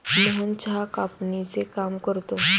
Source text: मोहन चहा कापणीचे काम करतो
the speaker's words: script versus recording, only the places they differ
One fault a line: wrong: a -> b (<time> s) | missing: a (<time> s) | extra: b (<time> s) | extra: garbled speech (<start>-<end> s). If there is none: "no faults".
no faults